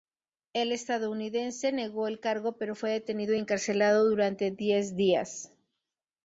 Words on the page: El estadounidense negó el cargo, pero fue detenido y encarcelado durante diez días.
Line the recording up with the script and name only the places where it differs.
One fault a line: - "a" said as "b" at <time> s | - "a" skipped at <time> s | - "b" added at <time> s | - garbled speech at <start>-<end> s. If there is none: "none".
none